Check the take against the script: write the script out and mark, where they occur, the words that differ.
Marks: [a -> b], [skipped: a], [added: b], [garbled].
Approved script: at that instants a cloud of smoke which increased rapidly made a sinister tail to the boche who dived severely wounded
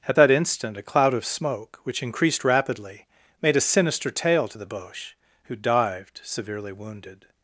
at that [instants -> instant] a cloud of smoke which increased rapidly made a sinister tail to the boche who dived severely wounded